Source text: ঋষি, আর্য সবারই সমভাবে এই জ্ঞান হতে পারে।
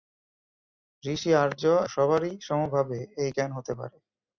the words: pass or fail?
pass